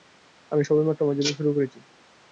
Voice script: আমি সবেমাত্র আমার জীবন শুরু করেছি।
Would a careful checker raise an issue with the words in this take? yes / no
no